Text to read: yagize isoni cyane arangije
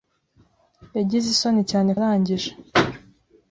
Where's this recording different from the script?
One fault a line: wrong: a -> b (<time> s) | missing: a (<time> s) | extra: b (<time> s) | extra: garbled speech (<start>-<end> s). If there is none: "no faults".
no faults